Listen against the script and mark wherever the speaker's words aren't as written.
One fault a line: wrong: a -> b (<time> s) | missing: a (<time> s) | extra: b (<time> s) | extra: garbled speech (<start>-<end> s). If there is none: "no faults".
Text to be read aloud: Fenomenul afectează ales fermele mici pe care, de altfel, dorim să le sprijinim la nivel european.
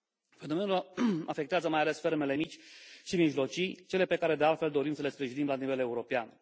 extra: mai (1.7 s)
extra: și mijlocii cele (3.0 s)